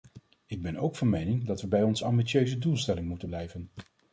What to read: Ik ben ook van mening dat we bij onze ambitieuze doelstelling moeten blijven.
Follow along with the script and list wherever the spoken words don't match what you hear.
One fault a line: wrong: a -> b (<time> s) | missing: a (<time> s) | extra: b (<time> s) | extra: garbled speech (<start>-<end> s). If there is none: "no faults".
no faults